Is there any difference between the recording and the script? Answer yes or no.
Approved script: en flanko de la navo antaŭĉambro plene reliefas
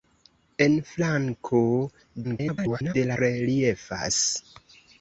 yes